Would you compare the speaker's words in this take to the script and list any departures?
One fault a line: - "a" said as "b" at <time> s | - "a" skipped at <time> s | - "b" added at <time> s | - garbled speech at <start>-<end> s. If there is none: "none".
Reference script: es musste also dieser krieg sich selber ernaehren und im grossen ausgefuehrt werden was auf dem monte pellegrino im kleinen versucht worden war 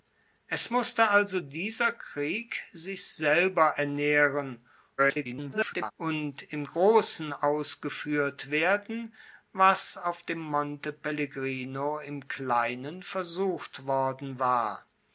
- garbled speech at 5.0-5.9 s